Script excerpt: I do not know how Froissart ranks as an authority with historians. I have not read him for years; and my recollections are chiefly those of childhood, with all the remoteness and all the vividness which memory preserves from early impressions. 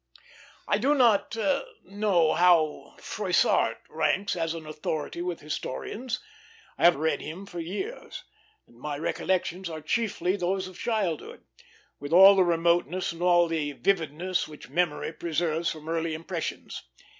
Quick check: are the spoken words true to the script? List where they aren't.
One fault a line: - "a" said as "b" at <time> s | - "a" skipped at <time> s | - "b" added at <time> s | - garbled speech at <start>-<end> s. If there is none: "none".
- "not" skipped at 7.0 s